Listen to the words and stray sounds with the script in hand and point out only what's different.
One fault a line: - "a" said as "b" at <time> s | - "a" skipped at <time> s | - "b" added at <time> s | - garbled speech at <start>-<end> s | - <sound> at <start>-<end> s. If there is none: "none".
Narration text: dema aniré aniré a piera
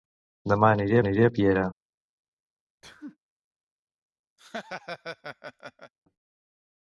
- sneeze at 2.8-3.2 s
- laugh at 4.4-5.9 s